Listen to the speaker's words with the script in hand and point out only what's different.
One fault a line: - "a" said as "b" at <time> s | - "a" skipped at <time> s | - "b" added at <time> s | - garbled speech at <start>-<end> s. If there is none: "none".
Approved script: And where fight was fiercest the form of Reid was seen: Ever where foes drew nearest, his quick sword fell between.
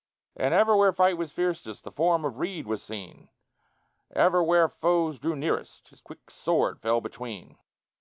- "ever" added at 0.5 s